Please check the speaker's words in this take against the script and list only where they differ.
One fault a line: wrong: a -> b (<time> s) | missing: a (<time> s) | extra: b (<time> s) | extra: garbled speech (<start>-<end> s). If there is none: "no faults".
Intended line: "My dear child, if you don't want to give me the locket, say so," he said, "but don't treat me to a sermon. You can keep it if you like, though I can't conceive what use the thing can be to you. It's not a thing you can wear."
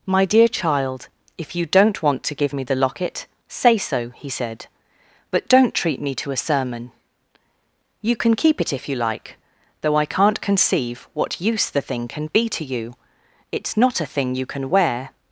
no faults